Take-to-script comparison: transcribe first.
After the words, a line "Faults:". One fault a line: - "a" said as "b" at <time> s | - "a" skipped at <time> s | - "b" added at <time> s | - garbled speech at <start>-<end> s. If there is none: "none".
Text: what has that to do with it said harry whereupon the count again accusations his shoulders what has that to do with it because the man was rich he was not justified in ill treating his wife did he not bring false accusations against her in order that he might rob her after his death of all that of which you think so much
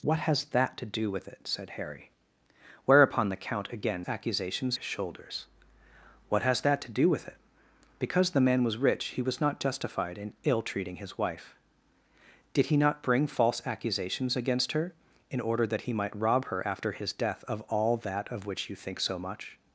what has that to do with it said harry whereupon the count again accusations his shoulders what has that to do with it because the man was rich he was not justified in ill treating his wife did he not bring false accusations against her in order that he might rob her after his death of all that of which you think so much
Faults:
none